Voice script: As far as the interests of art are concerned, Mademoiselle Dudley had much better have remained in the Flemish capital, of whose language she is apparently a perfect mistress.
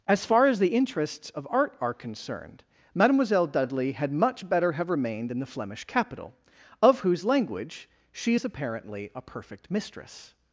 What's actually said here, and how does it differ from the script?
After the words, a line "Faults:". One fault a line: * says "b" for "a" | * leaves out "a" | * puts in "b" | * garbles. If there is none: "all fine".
As far as the interests of art are concerned, Mademoiselle Dudley had much better have remained in the Flemish capital, of whose language she is apparently a perfect mistress.
Faults:
all fine